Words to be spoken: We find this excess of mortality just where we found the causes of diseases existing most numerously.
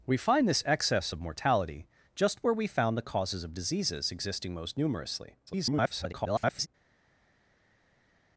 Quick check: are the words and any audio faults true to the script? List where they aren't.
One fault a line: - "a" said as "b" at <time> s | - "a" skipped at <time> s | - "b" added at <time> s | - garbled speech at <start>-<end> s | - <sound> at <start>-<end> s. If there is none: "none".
- garbled speech at 5.5-6.7 s